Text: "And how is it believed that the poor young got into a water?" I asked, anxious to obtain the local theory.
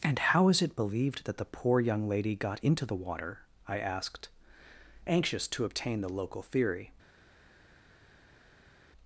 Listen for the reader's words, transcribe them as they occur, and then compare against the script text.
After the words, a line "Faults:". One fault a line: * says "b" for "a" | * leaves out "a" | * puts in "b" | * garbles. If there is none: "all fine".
"And how is it believed that the poor young lady got into the water?" I asked, anxious to obtain the local theory.
Faults:
* puts in "lady"
* says "the" for "a"